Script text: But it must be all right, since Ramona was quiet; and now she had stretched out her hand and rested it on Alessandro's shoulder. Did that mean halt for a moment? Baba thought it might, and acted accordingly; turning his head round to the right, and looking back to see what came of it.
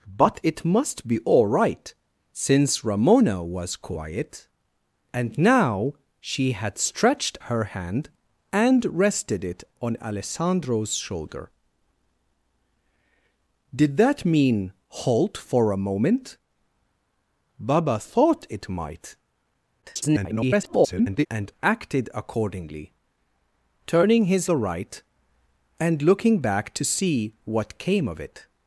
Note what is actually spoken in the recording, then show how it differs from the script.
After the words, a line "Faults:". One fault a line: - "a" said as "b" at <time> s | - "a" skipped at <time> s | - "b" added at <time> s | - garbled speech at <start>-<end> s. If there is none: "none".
But it must be all right, since Ramona was quiet; and now she had stretched her hand and rested it on Alessandro's shoulder. Did that mean halt for a moment? Baba thought it might, [garbled] and acted accordingly; turning his the right, and looking back to see what came of it.
Faults:
- "out" skipped at 7.4 s
- garbled speech at 19.8-21.3 s
- "head round to" skipped at 24.5 s